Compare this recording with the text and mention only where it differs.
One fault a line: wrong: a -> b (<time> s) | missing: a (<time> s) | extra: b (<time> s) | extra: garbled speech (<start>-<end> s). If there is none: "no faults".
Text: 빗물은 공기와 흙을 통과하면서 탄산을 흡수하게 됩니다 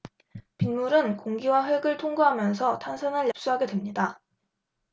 no faults